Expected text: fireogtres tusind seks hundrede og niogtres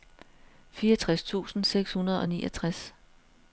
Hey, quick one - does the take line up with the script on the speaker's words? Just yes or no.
yes